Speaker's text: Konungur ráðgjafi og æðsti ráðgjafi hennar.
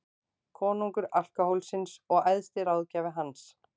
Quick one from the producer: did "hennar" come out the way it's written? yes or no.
no